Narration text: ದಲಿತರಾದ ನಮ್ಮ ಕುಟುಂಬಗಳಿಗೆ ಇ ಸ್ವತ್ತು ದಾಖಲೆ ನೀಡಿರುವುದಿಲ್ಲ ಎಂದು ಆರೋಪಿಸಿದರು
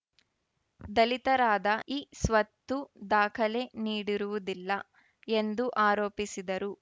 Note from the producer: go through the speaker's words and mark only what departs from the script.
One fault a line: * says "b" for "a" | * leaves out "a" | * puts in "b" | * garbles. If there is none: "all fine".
* leaves out "ನಮ್ಮ ಕುಟುಂಬಗಳಿಗೆ"